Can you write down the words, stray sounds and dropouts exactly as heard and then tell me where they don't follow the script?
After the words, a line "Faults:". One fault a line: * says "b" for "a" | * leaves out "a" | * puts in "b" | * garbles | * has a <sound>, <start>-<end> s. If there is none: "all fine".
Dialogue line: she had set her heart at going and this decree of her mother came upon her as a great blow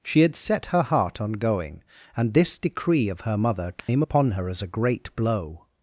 she had set her heart on going and this decree of her mother came upon her as a great blow
Faults:
* says "on" for "at"
* has a dropout, 3.8-3.9 s